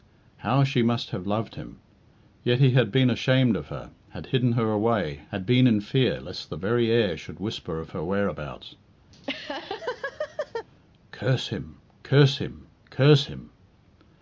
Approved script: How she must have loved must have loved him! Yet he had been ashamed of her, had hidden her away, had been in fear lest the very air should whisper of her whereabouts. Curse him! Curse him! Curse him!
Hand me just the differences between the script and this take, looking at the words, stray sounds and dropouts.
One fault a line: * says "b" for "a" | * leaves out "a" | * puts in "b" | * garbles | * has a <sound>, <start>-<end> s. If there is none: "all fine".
* leaves out "must have loved"
* has a laugh, 9.1-10.7 s